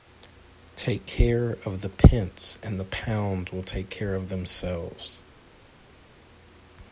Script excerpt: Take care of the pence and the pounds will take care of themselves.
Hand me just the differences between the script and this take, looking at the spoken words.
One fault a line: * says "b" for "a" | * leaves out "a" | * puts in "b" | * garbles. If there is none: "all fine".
all fine